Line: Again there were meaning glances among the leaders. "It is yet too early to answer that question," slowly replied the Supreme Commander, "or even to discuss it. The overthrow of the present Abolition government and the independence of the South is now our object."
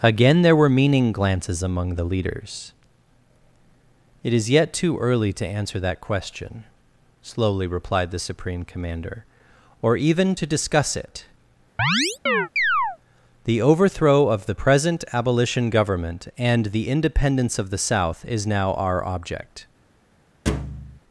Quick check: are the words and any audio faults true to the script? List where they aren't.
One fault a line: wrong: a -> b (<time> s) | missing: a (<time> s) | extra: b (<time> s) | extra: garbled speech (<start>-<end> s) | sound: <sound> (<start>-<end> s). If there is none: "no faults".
sound: chirp (11.8-13.0 s)
sound: thud (20.5-21.0 s)